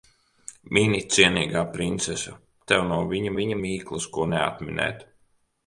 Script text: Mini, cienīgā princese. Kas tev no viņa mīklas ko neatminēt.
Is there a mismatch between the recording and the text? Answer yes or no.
yes